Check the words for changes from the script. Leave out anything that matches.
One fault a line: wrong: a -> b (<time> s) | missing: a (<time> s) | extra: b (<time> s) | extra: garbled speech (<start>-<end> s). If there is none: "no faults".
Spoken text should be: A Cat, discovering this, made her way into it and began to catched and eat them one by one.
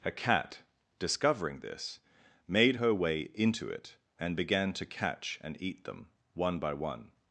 wrong: catched -> catch (4.8 s)